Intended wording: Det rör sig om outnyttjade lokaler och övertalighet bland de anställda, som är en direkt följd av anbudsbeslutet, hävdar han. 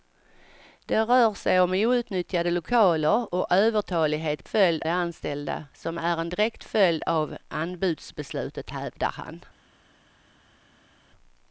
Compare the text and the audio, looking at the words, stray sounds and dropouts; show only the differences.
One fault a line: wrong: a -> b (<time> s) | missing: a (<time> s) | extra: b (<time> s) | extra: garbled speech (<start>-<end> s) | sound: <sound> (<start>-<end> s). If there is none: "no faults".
wrong: bland -> följd (4.4 s)